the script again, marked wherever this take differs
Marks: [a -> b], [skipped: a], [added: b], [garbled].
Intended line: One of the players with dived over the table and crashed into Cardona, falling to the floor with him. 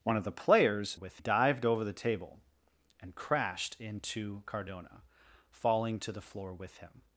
One of the players with dived over the table and crashed into Cardona, falling to the floor with him.